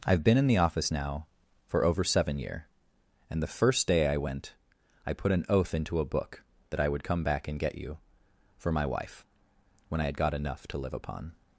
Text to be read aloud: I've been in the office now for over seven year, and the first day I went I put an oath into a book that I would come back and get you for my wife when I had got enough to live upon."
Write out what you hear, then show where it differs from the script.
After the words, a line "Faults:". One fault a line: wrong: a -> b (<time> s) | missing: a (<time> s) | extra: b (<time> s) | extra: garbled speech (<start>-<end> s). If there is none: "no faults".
I've been in the office now for over seven year, and the first day I went I put an oath into a book that I would come back and get you for my wife when I had got enough to live upon."
Faults:
no faults